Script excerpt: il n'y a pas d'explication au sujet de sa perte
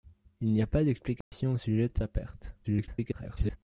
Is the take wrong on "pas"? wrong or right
right